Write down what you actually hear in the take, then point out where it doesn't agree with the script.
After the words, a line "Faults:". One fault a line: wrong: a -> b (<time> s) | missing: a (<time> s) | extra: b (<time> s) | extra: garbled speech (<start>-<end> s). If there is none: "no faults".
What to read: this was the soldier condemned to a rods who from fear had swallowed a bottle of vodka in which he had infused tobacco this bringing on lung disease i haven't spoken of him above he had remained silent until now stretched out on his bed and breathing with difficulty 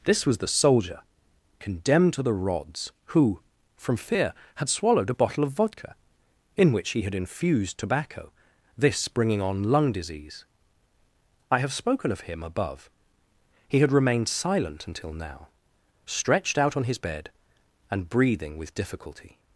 this was the soldier condemned to the rods who from fear had swallowed a bottle of vodka in which he had infused tobacco this bringing on lung disease i have spoken of him above he had remained silent until now stretched out on his bed and breathing with difficulty
Faults:
wrong: a -> the (2.2 s)
wrong: haven't -> have (11.6 s)